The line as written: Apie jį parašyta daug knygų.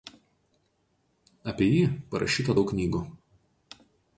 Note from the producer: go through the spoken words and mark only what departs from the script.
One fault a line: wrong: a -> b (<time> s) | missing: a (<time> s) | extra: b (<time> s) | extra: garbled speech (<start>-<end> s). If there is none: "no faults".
no faults